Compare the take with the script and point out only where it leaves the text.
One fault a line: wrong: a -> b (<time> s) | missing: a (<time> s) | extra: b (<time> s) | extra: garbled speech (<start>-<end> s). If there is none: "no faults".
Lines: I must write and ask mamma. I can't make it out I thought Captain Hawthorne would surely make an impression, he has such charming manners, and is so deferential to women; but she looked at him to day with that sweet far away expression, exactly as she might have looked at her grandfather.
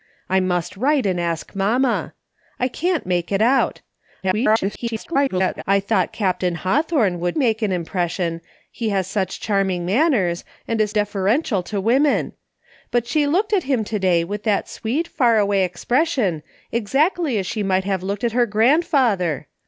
extra: garbled speech (4.2-5.6 s)
missing: surely (7.4 s)
missing: so (10.9 s)